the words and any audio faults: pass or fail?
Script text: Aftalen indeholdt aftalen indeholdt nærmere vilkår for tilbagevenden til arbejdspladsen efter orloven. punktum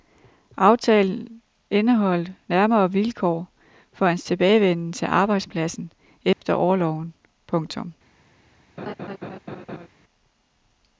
fail